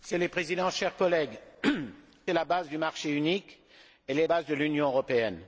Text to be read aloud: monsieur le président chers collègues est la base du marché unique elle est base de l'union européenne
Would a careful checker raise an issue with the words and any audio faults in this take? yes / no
no